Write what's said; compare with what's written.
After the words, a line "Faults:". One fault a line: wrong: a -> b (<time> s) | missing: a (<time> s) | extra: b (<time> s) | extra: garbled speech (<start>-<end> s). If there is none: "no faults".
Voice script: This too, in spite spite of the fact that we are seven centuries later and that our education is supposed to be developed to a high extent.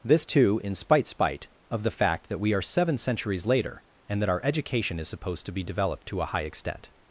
This too, in spite spite of the fact that we are seven centuries later and that our education is supposed to be developed to a high extent.
Faults:
no faults